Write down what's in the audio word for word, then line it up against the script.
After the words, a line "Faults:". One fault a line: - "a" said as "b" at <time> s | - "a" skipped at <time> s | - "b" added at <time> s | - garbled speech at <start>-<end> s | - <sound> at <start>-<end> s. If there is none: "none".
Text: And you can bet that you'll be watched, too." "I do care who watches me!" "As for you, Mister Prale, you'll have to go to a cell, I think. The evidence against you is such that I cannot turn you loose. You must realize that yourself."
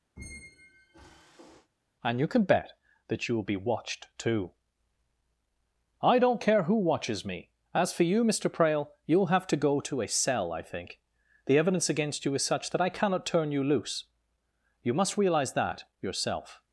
And you can bet that you'll be watched, too." "I don't care who watches me!" "As for you, Mister Prale, you'll have to go to a cell, I think. The evidence against you is such that I cannot turn you loose. You must realize that yourself."
Faults:
- squeak at 0.2-1.7 s
- "do" said as "don't" at 6.2 s